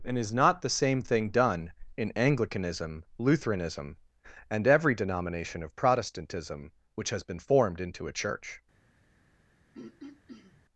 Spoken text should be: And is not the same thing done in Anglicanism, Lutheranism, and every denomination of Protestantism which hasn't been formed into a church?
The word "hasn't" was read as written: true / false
false